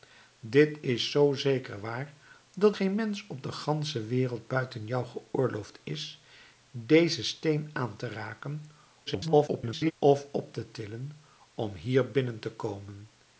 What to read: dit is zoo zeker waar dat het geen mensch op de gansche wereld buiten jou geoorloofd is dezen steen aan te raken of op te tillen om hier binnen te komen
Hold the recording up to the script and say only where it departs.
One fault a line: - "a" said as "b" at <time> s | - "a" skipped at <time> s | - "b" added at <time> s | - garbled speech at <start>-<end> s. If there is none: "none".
- "het" skipped at 2.8 s
- garbled speech at 9.1-9.9 s